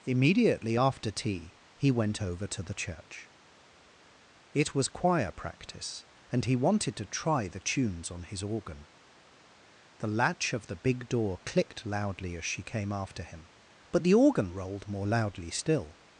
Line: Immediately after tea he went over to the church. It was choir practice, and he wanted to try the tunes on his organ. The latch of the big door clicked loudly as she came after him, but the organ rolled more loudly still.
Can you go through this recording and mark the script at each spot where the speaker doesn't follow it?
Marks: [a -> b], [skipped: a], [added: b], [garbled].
Immediately after tea he went over to the church. It was choir practice, and he wanted to try the tunes on his organ. The latch of the big door clicked loudly as she came after him, but the organ rolled more loudly still.